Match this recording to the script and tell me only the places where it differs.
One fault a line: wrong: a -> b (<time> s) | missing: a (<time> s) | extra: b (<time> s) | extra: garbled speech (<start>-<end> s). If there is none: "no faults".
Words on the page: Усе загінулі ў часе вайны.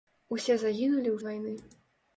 missing: часе (1.2 s)